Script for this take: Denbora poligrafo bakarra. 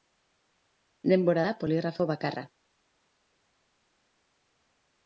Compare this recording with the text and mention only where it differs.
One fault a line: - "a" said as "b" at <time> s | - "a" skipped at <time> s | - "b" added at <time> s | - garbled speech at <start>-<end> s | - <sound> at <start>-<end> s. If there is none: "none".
- "da" added at 1.5 s